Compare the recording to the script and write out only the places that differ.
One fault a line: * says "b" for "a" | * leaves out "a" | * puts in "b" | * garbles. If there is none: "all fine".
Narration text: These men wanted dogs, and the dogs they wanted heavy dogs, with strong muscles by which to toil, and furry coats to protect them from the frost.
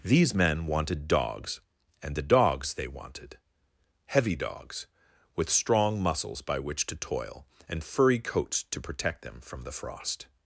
all fine